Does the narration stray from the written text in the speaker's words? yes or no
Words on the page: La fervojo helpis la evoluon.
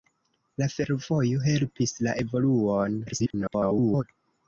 yes